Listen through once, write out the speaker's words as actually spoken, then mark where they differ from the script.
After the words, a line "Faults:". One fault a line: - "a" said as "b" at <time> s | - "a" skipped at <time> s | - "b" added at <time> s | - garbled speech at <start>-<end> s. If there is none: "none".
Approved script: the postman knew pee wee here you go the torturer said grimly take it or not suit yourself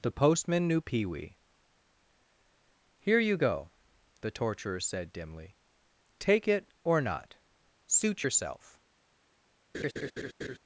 the postman knew pee wee here you go the torturer said dimly take it or not suit yourself
Faults:
- "grimly" said as "dimly" at 5.1 s